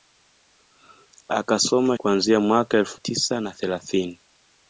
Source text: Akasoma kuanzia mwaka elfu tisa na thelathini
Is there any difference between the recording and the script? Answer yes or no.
no